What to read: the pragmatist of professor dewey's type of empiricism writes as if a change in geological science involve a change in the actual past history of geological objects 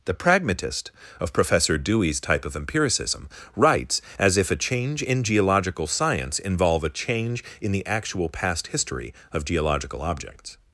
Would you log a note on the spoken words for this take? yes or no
no